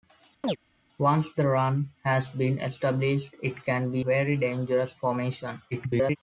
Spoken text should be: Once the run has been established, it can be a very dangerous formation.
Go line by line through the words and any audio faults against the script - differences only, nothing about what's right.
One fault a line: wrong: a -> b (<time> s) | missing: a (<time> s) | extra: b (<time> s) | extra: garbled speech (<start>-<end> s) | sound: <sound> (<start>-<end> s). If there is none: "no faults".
sound: chirp (0.4-0.6 s)
missing: a (4.1 s)
extra: garbled speech (5.7-6.2 s)